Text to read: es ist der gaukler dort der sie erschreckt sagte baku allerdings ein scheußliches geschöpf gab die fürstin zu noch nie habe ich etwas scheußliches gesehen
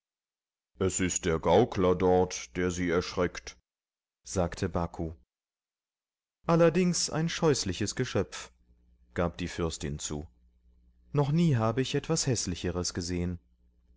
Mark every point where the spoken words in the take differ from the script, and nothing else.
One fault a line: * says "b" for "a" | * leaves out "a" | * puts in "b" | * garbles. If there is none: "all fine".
* says "häßlicheres" for "scheußliches"